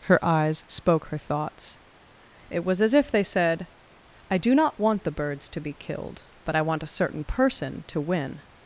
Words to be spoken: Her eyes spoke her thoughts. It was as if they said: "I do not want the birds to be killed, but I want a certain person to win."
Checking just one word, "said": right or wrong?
right